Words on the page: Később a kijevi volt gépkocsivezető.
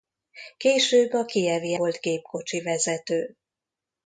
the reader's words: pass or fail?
pass